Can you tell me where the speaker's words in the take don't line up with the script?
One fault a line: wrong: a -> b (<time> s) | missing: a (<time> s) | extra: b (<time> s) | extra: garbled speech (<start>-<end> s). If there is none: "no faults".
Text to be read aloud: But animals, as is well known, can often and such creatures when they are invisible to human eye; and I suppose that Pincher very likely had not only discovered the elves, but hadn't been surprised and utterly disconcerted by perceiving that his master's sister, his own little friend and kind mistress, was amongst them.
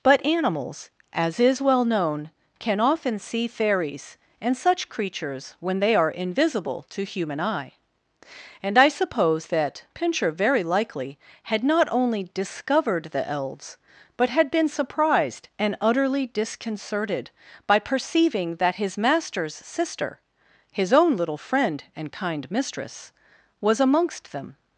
extra: see fairies (3.2 s)
wrong: hadn't -> had (14.3 s)